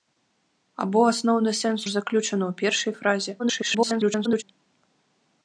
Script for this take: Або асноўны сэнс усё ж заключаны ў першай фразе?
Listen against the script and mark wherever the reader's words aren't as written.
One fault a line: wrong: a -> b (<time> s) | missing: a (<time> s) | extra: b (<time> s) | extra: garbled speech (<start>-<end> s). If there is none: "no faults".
missing: усё (1.8 s)
extra: garbled speech (3.4-4.4 s)